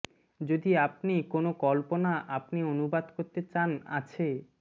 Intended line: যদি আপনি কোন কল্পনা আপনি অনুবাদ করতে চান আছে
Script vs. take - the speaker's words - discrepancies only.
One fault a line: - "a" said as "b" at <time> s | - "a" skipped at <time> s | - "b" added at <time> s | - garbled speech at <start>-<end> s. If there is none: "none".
none